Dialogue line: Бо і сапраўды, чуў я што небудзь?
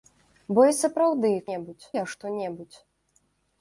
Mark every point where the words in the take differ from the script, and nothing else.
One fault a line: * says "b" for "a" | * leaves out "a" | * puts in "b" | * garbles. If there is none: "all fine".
* says "небудзь" for "чуў"